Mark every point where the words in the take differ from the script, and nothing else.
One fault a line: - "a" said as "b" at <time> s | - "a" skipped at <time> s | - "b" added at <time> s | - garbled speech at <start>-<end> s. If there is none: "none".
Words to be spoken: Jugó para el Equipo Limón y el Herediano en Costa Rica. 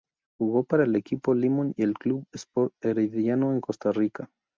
- "Club Sport" added at 1.9 s